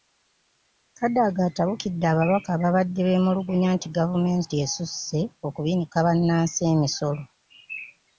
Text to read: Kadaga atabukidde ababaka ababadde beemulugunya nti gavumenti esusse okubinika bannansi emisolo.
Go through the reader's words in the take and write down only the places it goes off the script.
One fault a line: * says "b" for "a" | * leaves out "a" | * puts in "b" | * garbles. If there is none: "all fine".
all fine